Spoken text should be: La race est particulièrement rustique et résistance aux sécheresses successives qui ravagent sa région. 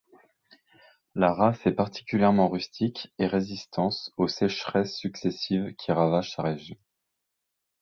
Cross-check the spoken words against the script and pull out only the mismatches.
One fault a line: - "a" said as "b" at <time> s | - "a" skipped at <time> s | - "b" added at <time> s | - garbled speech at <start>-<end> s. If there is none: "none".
none